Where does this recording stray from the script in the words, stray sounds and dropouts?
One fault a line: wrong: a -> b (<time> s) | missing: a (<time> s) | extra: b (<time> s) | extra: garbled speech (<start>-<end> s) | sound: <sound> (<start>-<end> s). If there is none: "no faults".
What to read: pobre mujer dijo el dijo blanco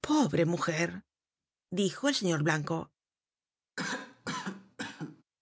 wrong: dijo -> señor (2.1 s)
sound: cough (3.8-5.2 s)